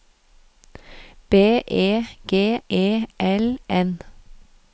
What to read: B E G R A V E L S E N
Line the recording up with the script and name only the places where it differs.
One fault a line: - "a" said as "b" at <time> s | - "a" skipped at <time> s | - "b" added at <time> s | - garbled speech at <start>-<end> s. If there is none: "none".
- "R A V" skipped at 2.6 s
- "S E" skipped at 3.6 s